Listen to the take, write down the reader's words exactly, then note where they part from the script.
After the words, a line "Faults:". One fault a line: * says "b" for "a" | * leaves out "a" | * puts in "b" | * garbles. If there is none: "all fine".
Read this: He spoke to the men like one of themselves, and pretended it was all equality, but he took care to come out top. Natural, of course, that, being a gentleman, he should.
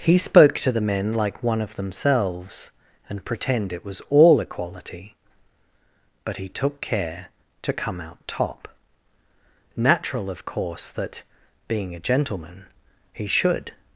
He spoke to the men like one of themselves, and pretend it was all equality, but he took care to come out top. Natural, of course, that, being a gentleman, he should.
Faults:
* says "pretend" for "pretended"